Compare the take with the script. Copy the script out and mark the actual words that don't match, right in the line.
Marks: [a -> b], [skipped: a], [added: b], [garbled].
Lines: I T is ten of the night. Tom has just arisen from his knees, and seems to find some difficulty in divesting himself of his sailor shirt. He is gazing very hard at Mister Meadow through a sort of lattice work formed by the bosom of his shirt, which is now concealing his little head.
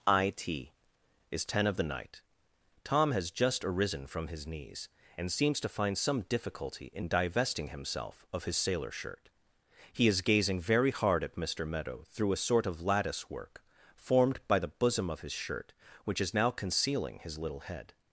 I T is ten of the night. Tom has just arisen from his knees, and seems to find some difficulty in divesting himself of his sailor shirt. He is gazing very hard at Mister Meadow through a sort of lattice work formed by the bosom of his shirt, which is now concealing his little head.